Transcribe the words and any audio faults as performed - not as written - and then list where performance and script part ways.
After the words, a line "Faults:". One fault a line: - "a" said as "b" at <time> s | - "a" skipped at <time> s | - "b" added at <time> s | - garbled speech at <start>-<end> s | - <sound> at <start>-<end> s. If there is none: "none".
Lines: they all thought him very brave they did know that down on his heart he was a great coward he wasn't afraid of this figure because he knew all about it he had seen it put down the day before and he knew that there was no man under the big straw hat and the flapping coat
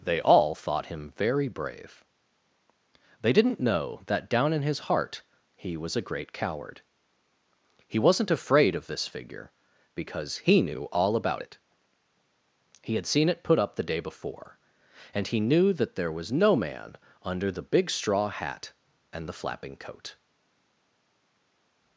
they all thought him very brave they didn't know that down in his heart he was a great coward he wasn't afraid of this figure because he knew all about it he had seen it put up the day before and he knew that there was no man under the big straw hat and the flapping coat
Faults:
- "did" said as "didn't" at 3.3 s
- "on" said as "in" at 4.5 s
- "down" said as "up" at 13.6 s